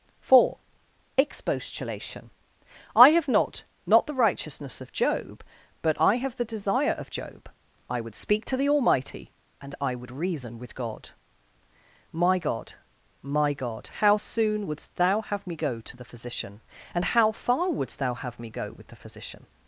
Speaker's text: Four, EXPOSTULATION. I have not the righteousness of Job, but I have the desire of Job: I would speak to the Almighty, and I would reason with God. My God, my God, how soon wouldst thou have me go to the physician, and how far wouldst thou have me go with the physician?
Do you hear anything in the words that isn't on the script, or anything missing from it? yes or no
yes